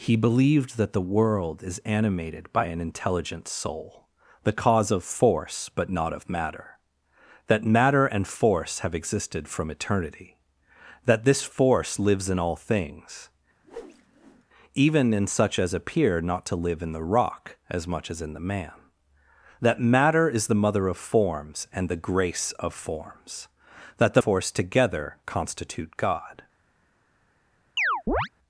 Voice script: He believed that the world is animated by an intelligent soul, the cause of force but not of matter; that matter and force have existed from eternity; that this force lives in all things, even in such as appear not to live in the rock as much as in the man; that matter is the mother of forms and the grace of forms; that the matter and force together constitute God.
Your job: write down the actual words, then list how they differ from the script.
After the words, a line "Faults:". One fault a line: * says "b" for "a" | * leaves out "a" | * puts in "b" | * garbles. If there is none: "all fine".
He believed that the world is animated by an intelligent soul, the cause of force but not of matter; that matter and force have existed from eternity; that this force lives in all things, even in such as appear not to live in the rock as much as in the man; that matter is the mother of forms and the grace of forms; that the force together constitute God.
Faults:
* leaves out "matter and"